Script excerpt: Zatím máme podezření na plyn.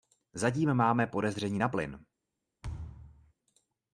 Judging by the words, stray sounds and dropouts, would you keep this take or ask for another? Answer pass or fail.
fail